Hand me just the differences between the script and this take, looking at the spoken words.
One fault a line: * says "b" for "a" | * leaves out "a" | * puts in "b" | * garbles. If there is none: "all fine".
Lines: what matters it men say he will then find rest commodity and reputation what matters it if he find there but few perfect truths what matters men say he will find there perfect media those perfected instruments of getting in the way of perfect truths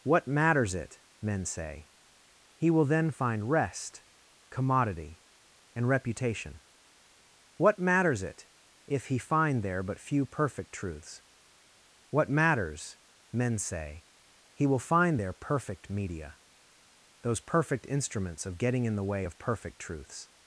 * says "perfect" for "perfected"